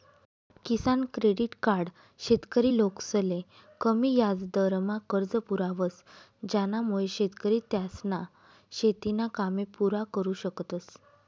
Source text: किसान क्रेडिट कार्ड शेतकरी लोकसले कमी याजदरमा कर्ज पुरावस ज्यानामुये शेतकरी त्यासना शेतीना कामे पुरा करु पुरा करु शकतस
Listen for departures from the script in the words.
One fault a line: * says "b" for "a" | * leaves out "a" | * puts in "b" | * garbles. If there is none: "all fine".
* leaves out "पुरा करु"